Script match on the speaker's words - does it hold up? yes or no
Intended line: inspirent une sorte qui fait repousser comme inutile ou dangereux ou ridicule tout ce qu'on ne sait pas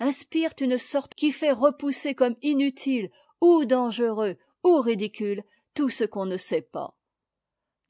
yes